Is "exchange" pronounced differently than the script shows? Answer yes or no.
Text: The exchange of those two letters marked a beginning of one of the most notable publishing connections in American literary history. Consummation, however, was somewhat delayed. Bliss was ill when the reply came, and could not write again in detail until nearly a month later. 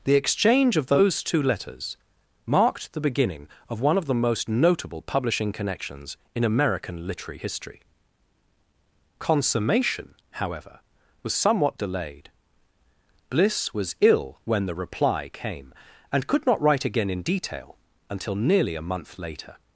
no